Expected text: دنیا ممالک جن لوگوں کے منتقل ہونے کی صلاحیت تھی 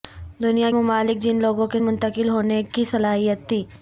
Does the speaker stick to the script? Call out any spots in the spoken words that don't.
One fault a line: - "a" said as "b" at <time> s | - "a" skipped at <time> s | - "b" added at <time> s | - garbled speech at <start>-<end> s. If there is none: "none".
none